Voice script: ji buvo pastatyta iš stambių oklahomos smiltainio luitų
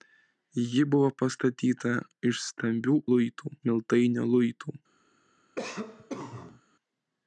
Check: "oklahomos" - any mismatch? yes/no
yes